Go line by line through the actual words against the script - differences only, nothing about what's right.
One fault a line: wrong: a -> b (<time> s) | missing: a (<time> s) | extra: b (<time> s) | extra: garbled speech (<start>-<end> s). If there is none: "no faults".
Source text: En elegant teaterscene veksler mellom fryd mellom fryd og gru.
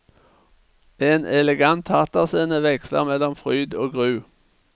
missing: mellom fryd (3.8 s)